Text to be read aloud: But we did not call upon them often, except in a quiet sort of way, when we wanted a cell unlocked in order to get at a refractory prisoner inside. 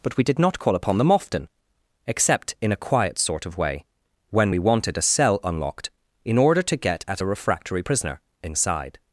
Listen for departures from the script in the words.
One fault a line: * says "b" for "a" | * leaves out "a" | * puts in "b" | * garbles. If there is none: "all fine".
all fine